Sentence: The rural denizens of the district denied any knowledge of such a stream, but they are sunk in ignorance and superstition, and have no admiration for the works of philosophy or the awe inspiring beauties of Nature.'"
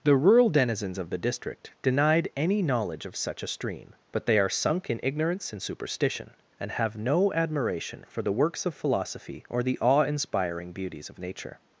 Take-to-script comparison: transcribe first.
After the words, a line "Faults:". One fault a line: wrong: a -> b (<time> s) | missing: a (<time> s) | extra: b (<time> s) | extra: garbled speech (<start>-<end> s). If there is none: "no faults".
The rural denizens of the district denied any knowledge of such a stream, but they are sunk in ignorance and superstition, and have no admiration for the works of philosophy or the awe inspiring beauties of Nature.'"
Faults:
no faults